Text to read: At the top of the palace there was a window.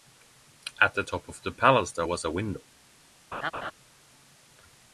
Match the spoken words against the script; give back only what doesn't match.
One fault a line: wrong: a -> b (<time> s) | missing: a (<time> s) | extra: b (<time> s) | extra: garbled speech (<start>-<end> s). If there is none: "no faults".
no faults